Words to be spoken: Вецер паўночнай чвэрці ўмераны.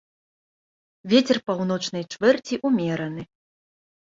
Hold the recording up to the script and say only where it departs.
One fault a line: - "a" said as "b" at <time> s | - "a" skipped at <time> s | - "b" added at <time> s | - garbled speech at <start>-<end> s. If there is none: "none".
none